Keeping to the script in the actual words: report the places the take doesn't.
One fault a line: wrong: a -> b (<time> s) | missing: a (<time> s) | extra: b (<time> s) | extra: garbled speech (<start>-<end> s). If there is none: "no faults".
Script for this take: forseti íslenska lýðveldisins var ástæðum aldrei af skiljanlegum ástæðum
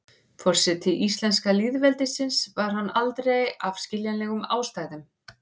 wrong: ástæðum -> hann (2.8 s)